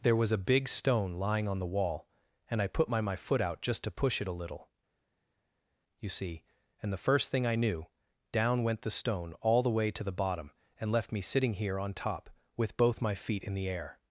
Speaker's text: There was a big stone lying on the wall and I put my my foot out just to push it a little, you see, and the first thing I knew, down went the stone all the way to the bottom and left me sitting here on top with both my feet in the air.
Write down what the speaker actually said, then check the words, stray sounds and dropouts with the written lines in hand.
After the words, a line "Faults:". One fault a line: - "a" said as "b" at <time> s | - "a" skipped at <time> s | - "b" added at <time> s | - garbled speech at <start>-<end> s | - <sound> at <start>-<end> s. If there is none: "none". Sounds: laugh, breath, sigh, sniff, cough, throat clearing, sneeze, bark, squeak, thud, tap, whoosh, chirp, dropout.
There was a big stone lying on the wall and I put my my foot out just to push it a little, you see, and the first thing I knew, down went the stone all the way to the bottom and left me sitting here on top with both my feet in the air.
Faults:
none